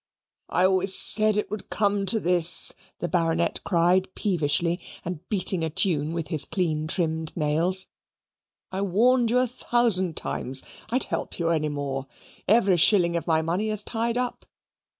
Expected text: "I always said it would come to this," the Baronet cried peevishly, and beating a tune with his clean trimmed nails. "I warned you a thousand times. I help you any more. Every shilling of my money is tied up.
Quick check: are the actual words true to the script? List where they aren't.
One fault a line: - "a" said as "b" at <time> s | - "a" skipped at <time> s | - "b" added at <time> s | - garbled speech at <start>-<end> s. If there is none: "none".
none